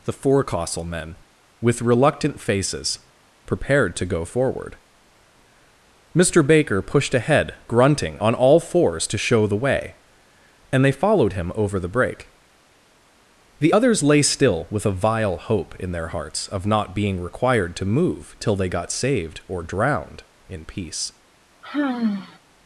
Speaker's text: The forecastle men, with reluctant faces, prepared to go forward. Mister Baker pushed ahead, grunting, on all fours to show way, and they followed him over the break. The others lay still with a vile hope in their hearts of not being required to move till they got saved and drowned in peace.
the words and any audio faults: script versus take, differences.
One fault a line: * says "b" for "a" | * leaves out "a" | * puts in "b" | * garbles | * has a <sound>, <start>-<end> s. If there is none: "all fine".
* puts in "the"
* says "or" for "and"
* has a sigh, 21.6-22.4 s